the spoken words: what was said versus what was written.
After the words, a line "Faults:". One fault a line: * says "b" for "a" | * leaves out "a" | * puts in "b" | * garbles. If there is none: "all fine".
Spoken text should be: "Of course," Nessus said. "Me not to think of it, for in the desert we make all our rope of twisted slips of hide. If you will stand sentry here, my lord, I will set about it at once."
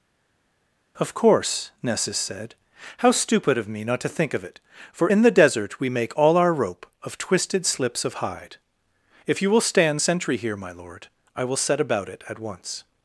"Of course," Nessus said. "How stupid of me not to think of it, for in the desert we make all our rope of twisted slips of hide. If you will stand sentry here, my lord, I will set about it at once."
Faults:
* puts in "How stupid of"